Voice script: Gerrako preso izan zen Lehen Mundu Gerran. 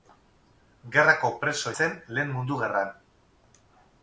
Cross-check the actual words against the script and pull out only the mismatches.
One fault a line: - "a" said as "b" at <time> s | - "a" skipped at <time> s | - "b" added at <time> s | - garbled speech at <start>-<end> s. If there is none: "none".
- "izan" skipped at 1.8 s